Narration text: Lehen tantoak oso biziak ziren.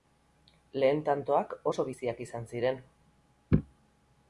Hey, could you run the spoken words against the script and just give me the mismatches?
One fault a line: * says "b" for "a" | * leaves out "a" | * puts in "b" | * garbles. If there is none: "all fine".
* puts in "izan"